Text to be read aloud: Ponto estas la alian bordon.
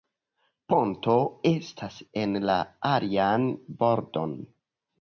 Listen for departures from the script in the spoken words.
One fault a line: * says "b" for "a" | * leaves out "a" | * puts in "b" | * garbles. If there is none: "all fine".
* puts in "en"